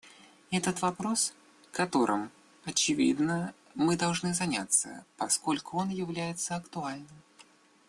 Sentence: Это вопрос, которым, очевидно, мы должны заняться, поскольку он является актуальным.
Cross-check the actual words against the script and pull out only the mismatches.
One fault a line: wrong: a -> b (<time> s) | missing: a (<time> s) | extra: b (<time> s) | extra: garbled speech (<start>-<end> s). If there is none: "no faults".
no faults